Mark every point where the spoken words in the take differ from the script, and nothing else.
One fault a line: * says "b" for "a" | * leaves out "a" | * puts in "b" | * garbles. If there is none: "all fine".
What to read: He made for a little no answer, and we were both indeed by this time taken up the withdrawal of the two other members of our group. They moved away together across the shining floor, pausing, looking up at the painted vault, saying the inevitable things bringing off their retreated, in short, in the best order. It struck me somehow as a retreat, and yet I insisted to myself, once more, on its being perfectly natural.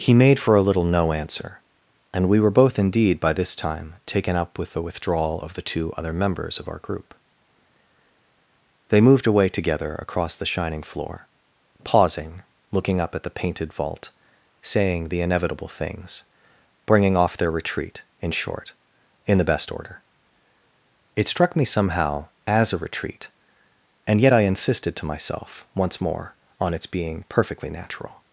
* puts in "with"
* says "retreat" for "retreated"